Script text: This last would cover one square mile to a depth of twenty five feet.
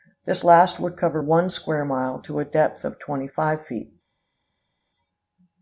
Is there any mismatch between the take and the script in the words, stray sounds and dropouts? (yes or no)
no